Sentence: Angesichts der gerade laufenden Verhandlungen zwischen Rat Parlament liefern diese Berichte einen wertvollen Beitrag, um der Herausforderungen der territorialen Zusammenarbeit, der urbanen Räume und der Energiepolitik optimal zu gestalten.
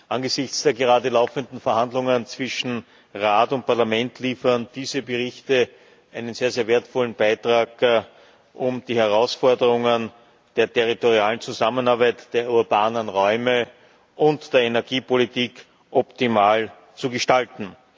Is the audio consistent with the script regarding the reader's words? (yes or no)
no